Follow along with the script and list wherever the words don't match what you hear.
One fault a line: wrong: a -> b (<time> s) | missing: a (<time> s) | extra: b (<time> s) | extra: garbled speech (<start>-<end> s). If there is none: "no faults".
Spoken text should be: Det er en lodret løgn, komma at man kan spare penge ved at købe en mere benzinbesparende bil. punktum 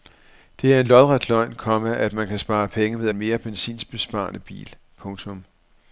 missing: at købe (3.1 s)